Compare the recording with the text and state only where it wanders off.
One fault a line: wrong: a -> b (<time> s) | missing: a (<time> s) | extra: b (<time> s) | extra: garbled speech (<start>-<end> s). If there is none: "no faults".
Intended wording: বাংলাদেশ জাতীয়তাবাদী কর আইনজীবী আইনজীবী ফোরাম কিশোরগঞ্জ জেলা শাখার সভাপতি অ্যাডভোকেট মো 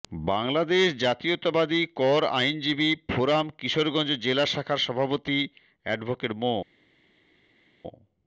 missing: আইনজীবী (2.9 s)